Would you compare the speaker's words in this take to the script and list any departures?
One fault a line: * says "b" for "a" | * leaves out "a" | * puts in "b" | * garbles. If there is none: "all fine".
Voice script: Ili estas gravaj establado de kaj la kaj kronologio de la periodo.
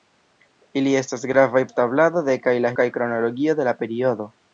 all fine